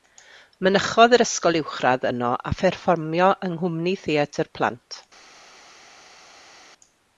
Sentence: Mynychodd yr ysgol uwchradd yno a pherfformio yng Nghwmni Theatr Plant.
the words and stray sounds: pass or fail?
pass